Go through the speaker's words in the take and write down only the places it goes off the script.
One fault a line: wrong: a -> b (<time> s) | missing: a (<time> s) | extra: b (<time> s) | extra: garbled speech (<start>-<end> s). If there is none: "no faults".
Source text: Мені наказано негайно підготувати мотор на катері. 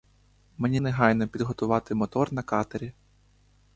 missing: наказано (0.8 s)